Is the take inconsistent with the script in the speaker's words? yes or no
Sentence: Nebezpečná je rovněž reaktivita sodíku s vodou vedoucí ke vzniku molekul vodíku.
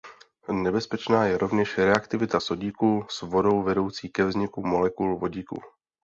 no